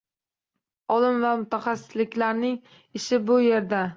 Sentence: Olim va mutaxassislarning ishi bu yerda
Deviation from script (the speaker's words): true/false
false